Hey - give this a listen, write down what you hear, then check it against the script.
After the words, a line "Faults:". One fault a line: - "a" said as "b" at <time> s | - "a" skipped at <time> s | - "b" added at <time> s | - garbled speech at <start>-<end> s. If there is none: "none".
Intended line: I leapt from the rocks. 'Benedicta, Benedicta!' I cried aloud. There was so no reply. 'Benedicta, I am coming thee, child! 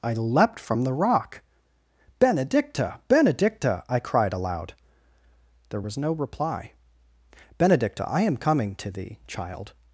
I leapt from the rock. 'Benedicta, Benedicta!' I cried aloud. There was no reply. 'Benedicta, I am coming to thee, child!
Faults:
- "rocks" said as "rock" at 0.9 s
- "so" skipped at 6.0 s
- "to" added at 8.8 s